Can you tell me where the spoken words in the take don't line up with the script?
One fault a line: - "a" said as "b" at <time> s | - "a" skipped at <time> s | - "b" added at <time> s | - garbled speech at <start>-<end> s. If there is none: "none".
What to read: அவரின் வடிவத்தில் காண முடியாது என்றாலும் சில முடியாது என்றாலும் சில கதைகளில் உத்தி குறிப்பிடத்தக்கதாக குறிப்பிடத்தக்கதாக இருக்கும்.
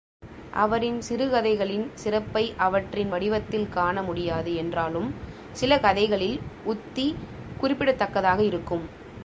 - "வடிவத்தில் காண முடியாது என்றாலும் சில" said as "சிறுகதைகளின் சிறப்பை அவற்றின் வடிவத்தில் காண" at 1.0 s
- "குறிப்பிடத்தக்கதாக" skipped at 8.4 s